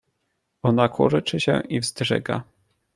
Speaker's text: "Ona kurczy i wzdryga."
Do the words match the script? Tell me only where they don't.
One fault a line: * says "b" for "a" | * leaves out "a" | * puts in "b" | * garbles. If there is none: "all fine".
* puts in "się"